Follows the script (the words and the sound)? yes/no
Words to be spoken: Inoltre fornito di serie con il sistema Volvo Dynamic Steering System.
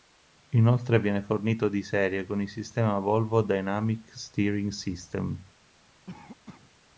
no